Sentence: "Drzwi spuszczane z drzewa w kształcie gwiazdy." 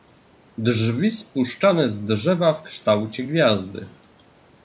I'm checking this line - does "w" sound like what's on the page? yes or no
yes